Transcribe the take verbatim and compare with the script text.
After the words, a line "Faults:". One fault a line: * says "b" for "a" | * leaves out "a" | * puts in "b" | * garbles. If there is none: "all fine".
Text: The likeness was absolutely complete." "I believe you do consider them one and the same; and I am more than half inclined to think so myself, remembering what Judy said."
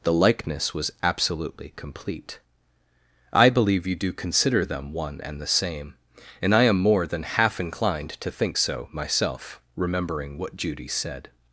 The likeness was absolutely complete." "I believe you do consider them one and the same; and I am more than half inclined to think so myself, remembering what Judy said."
Faults:
all fine